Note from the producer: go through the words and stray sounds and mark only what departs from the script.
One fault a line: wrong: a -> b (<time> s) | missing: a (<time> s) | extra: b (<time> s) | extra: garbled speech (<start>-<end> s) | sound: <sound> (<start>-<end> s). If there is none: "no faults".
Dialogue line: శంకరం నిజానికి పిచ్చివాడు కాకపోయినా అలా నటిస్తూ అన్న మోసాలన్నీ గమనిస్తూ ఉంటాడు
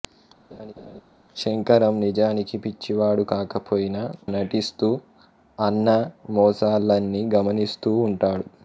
sound: laugh (0.5-1.0 s)
missing: అలా (4.0 s)